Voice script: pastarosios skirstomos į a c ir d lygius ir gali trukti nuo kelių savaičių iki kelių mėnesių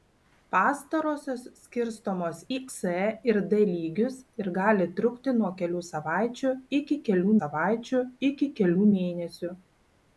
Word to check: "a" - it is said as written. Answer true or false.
false